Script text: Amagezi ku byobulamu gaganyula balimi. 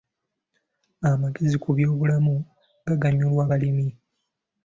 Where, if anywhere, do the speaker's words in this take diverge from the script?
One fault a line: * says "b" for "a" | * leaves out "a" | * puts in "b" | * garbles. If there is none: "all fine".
all fine